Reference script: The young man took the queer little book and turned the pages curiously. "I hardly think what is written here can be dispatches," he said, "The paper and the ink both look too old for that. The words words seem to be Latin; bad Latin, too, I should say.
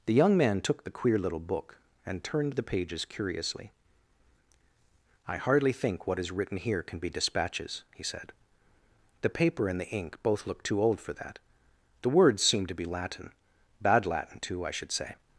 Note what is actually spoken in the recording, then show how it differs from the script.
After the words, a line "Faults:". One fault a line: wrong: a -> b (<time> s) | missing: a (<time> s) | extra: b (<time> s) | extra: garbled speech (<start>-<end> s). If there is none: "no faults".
The young man took the queer little book and turned the pages curiously. "I hardly think what is written here can be dispatches," he said, "The paper and the ink both look too old for that. The words seem to be Latin; bad Latin, too, I should say.
Faults:
missing: words (12.4 s)